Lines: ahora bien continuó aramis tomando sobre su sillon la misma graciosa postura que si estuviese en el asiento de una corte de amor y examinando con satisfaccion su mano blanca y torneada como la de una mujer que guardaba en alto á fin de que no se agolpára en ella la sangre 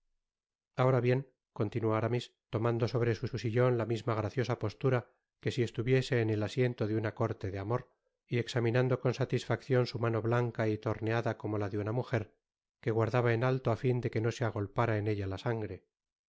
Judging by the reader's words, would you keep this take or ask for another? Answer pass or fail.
fail